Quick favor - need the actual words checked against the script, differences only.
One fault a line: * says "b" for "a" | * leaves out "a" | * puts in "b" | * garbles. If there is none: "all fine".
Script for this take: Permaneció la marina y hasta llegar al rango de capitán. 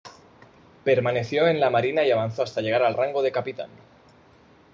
* puts in "en"
* puts in "avanzó"